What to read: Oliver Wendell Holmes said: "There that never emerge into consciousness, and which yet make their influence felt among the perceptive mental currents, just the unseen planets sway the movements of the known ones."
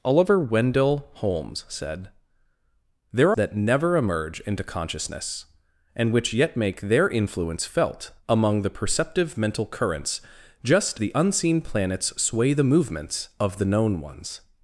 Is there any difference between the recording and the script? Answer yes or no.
no